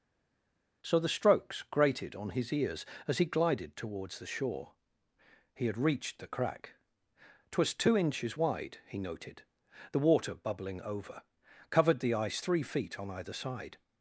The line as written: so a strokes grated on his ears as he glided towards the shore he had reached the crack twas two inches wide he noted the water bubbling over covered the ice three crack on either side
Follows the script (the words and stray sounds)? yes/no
no